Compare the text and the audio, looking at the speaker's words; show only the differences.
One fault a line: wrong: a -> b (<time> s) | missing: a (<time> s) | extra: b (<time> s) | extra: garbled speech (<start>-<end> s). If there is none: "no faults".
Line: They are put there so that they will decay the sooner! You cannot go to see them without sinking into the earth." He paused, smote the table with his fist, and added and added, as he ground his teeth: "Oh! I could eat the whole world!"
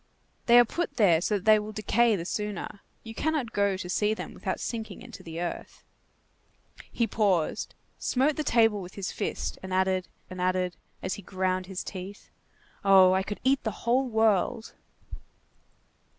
no faults